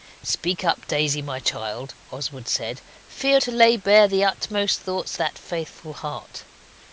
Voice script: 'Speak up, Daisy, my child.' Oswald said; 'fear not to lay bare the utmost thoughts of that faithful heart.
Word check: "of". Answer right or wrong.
wrong